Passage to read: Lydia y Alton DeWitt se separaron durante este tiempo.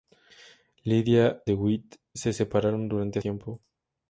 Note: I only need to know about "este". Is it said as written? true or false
false